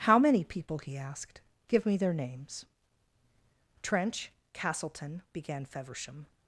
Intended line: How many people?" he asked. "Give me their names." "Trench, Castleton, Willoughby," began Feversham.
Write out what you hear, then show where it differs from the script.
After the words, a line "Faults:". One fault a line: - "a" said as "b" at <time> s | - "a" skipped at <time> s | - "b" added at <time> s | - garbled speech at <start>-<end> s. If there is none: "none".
How many people?" he asked. "Give me their names." "Trench, Castleton," Began Feversham.
Faults:
- "Willoughby" skipped at 5.2 s